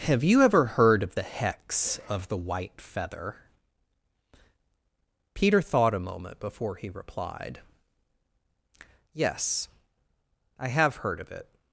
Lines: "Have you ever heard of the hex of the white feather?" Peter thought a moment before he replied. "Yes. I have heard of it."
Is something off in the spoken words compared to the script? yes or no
no